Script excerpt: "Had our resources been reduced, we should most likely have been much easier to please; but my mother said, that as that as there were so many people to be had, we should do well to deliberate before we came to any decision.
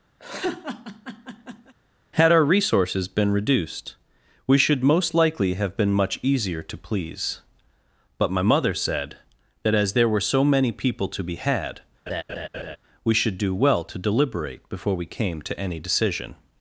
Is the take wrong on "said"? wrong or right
right